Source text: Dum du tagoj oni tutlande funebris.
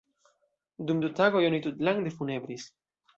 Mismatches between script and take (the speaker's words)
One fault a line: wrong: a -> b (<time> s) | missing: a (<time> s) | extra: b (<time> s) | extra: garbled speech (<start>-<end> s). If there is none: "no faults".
no faults